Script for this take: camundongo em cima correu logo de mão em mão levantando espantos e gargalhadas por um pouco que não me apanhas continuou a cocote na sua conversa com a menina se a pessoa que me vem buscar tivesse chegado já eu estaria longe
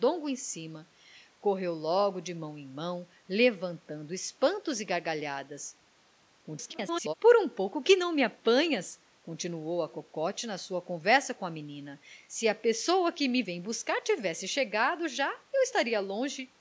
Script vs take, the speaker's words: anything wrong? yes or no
yes